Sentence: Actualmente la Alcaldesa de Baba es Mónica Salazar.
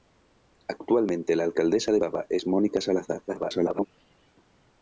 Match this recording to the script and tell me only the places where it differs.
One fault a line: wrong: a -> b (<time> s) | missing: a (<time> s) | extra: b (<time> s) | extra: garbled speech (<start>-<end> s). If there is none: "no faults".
extra: garbled speech (3.3-3.9 s)